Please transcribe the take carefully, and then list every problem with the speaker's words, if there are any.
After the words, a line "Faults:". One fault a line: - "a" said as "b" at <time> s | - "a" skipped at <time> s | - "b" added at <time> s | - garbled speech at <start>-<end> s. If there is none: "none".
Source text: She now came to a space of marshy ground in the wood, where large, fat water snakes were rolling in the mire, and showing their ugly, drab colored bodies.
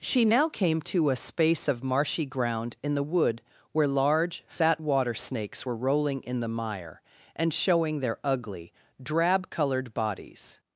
She now came to a space of marshy ground in the wood, where large, fat water snakes were rolling in the mire, and showing their ugly, drab colored bodies.
Faults:
none